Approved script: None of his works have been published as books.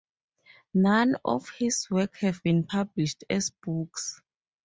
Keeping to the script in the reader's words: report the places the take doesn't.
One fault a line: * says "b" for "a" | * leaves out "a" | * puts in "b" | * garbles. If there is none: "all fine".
all fine